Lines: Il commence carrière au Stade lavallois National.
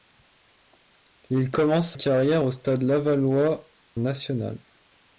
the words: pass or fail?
pass